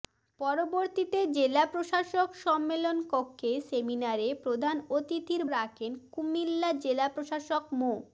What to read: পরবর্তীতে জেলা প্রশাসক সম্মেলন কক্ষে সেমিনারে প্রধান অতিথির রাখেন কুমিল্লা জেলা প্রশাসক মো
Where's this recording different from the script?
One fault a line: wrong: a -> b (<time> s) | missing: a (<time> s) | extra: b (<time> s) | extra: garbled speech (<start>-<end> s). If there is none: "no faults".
no faults